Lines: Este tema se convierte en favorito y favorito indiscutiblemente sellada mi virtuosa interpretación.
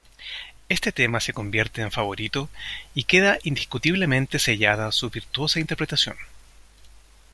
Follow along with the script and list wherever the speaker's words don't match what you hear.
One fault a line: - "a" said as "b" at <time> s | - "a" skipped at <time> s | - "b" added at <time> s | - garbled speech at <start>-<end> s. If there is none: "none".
- "favorito" said as "queda" at 3.0 s
- "mi" said as "su" at 4.9 s